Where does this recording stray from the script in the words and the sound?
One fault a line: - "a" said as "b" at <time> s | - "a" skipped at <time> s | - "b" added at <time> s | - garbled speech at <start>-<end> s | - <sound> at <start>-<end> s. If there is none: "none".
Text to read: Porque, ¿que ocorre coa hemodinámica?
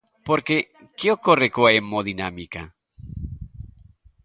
none